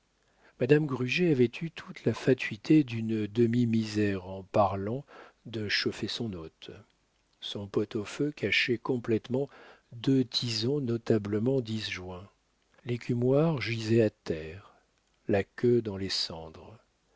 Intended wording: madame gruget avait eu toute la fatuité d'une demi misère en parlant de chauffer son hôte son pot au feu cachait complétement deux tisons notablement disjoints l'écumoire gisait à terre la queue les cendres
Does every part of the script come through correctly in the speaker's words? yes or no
no